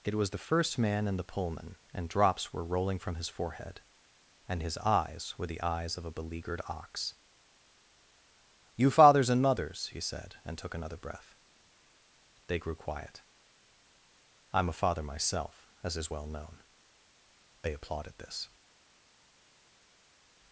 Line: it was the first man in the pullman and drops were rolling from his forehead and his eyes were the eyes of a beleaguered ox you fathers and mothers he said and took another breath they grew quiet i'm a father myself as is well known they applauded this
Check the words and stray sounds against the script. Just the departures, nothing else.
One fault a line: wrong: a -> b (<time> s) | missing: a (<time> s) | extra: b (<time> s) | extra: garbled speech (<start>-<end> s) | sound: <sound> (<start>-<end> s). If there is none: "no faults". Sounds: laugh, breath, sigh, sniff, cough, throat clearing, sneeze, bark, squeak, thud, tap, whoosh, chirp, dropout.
no faults